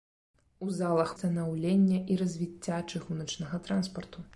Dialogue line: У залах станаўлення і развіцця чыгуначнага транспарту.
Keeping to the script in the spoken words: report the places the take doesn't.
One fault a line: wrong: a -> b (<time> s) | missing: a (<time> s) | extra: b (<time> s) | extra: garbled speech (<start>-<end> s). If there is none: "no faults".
no faults